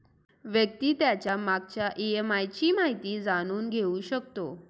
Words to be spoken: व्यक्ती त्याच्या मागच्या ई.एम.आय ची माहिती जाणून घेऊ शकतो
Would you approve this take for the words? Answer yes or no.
yes